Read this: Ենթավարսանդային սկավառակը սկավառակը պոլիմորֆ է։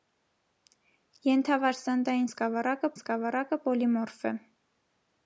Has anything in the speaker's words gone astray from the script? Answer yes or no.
no